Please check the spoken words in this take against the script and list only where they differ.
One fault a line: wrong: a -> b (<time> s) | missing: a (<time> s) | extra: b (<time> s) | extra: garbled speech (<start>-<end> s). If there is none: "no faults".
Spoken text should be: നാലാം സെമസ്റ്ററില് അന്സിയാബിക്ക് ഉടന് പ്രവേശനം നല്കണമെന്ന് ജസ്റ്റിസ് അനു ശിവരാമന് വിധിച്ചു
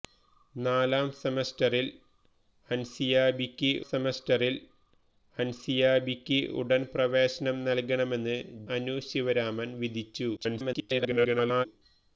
extra: സെമസ്റ്ററില് അന്സിയാബിക്ക് (3.8 s)
missing: ജസ്റ്റിസ് (8.4 s)
extra: garbled speech (10.4-11.7 s)